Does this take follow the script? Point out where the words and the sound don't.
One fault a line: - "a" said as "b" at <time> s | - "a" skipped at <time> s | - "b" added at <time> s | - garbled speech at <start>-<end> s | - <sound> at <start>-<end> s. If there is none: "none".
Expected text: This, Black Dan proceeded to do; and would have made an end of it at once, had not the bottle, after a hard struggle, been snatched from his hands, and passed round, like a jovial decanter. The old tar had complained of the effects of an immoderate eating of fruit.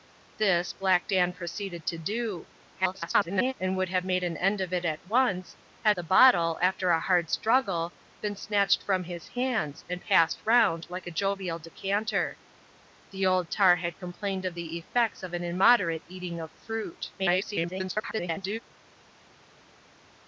- garbled speech at 2.7-3.5 s
- "not" skipped at 6.0 s
- garbled speech at 17.2-18.6 s